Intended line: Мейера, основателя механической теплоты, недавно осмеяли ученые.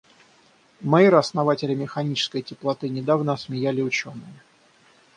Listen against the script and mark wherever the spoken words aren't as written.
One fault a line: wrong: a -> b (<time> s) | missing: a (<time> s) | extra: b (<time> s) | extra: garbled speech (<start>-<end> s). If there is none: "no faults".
no faults